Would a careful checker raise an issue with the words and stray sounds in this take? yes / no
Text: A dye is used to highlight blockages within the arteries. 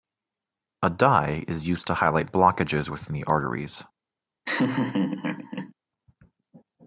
yes